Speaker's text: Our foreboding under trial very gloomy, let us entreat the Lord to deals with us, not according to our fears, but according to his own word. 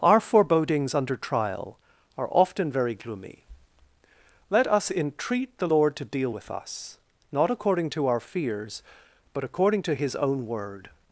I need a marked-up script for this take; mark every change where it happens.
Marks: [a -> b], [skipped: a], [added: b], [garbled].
Our [foreboding -> forebodings] under trial [added: are often] very gloomy, let us entreat the Lord to [deals -> deal] with us, not according to our fears, but according to his own word.